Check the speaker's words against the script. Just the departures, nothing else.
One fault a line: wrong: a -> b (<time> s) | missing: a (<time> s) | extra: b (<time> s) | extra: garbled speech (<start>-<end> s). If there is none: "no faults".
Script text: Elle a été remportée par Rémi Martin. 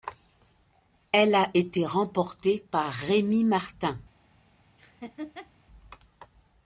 no faults